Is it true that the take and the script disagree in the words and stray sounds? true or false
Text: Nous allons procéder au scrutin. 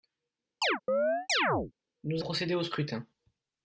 true